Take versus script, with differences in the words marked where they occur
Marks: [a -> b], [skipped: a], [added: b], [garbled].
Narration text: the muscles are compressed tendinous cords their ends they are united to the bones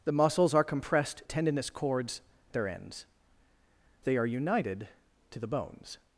the muscles are compressed tendinous cords their ends they are united to the bones